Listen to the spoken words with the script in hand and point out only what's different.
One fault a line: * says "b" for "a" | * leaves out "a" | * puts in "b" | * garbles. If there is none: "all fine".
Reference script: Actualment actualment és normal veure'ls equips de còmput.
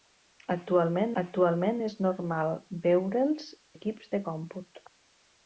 all fine